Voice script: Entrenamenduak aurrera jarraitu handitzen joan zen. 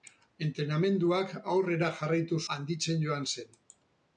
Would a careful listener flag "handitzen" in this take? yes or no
no